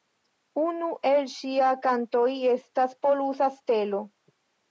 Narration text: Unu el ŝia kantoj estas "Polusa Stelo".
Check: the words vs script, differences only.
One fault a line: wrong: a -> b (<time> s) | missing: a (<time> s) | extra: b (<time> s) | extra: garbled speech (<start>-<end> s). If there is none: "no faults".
no faults